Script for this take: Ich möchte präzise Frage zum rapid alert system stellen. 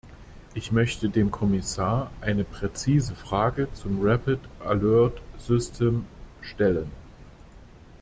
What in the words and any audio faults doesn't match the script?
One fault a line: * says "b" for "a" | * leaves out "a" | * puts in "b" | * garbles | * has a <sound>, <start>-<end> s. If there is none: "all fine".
* puts in "dem Kommissar eine"